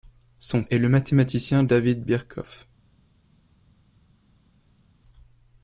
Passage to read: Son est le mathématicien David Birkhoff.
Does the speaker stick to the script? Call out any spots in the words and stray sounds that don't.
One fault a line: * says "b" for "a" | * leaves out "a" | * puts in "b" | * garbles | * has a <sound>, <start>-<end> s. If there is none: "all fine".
all fine